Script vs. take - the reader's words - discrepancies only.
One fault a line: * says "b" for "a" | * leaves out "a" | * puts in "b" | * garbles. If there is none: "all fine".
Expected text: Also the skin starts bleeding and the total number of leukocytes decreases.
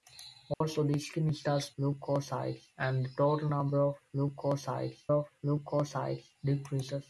* says "leukocytes" for "bleeding"
* puts in "of leukocytes"